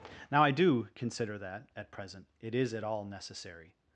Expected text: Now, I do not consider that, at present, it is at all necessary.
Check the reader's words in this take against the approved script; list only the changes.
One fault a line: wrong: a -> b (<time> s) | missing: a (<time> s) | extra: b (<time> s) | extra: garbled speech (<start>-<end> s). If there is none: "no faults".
missing: not (0.9 s)